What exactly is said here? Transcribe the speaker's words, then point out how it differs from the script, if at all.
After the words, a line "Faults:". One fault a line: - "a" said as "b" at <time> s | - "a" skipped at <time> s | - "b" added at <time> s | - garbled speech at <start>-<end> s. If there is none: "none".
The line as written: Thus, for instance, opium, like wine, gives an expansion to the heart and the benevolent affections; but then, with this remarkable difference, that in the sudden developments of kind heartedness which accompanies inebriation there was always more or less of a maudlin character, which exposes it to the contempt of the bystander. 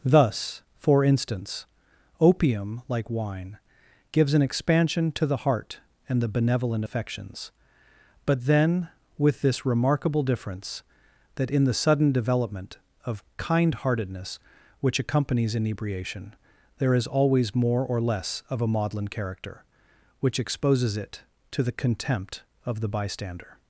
Thus, for instance, opium, like wine, gives an expansion to the heart and the benevolent affections; but then, with this remarkable difference, that in the sudden development of kind heartedness which accompanies inebriation there is always more or less of a maudlin character, which exposes it to the contempt of the bystander.
Faults:
- "developments" said as "development" at 12.1 s
- "was" said as "is" at 16.9 s